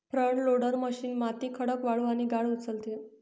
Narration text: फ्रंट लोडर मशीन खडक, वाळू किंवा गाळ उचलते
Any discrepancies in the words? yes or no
yes